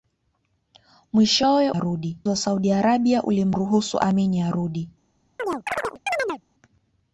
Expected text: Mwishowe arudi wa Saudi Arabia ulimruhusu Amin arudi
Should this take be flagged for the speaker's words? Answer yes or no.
no